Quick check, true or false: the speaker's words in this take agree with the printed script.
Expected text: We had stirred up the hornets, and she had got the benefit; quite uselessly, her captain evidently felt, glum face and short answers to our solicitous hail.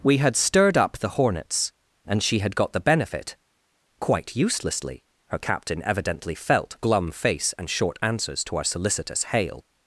true